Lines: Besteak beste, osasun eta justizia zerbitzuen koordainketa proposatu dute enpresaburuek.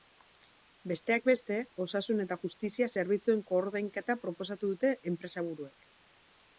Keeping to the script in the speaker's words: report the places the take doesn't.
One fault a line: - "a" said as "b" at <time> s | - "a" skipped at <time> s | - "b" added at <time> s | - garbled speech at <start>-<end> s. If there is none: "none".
none